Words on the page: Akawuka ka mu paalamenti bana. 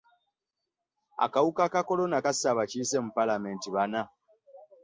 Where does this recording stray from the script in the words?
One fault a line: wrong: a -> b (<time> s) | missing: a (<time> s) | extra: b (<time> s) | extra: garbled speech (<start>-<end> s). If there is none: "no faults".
extra: kolona kasse abakiise (1.9 s)